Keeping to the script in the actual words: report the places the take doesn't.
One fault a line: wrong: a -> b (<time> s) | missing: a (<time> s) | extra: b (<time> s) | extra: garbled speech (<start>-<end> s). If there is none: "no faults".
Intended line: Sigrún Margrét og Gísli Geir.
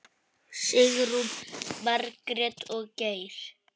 missing: Gísli (2.8 s)